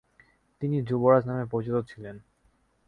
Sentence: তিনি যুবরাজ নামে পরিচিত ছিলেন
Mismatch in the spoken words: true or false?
false